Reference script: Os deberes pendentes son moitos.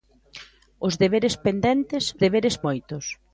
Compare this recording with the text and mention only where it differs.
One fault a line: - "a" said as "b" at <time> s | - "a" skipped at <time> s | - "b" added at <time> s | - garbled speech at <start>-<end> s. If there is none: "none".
- "son" said as "deberes" at 2.2 s